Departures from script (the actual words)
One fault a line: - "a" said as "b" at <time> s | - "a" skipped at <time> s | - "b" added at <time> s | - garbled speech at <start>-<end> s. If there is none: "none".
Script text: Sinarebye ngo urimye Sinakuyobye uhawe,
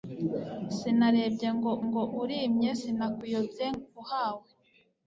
- "ngo" added at 1.9 s